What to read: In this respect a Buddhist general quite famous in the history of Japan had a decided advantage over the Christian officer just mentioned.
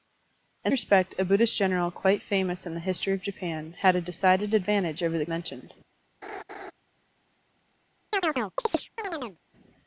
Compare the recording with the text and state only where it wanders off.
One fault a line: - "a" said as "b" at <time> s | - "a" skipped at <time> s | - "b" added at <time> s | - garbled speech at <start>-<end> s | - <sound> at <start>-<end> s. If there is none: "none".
- "this" skipped at 0.7 s
- "Christian officer just" skipped at 5.3 s
- laugh at 6.2-6.7 s
- chirp at 8.1-9.4 s